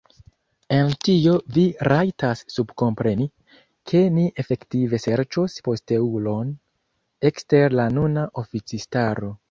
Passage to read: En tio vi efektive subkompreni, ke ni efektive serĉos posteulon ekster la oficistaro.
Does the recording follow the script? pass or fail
fail